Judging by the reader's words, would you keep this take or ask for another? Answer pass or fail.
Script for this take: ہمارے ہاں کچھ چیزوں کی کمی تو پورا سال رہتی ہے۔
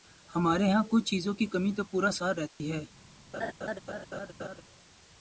pass